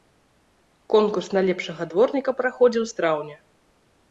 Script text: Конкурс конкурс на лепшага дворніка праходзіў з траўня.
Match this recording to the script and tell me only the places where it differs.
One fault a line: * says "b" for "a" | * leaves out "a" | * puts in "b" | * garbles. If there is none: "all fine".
* leaves out "конкурс"